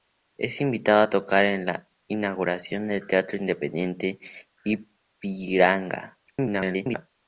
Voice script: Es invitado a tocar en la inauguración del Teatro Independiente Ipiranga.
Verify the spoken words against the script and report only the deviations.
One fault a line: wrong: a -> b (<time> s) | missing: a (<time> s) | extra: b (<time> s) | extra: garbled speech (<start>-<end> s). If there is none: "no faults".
extra: garbled speech (6.3-7.1 s)